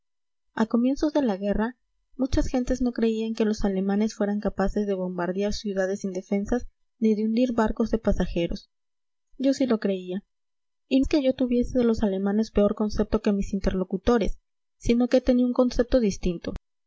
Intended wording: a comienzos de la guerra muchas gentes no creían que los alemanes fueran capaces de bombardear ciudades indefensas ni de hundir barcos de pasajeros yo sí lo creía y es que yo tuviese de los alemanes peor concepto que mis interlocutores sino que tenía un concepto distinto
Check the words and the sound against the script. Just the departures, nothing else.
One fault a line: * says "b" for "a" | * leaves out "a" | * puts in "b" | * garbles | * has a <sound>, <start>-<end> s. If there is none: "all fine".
all fine